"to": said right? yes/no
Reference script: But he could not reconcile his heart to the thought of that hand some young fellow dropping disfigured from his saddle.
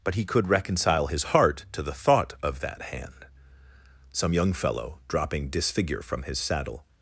yes